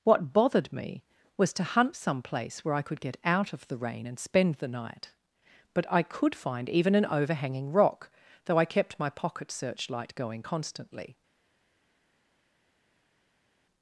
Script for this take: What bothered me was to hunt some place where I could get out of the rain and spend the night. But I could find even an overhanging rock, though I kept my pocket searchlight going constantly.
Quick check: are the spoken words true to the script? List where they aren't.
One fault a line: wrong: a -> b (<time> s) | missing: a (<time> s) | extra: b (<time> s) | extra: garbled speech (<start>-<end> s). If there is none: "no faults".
no faults